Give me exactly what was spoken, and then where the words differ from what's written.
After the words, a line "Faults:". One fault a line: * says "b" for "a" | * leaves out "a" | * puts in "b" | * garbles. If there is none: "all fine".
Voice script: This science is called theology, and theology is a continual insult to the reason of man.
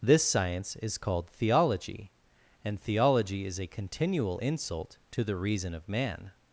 This science is called theology, and theology is a continual insult to the reason of man.
Faults:
all fine